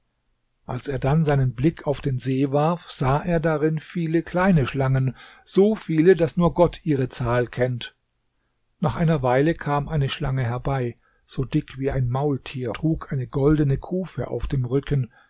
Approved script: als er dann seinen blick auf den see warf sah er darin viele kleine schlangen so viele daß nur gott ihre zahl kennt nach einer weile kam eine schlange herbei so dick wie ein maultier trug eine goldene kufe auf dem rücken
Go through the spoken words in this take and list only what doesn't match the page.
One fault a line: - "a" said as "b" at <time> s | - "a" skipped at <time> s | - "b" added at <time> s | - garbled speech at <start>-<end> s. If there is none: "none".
none